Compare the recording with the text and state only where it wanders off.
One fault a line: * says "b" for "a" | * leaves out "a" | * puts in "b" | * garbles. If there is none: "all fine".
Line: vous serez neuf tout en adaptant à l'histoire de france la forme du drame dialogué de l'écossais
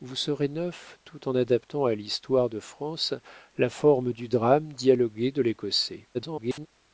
* garbles